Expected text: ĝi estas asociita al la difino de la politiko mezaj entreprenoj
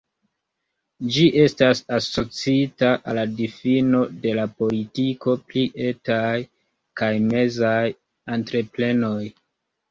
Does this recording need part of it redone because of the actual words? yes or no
yes